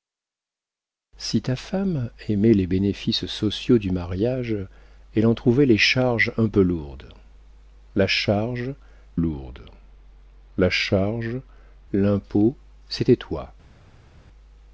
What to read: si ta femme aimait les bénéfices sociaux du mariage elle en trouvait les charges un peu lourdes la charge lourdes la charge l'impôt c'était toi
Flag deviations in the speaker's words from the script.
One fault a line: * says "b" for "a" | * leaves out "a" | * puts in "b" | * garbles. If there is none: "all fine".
all fine